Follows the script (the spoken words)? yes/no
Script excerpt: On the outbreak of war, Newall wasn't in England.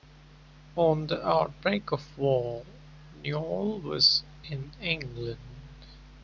no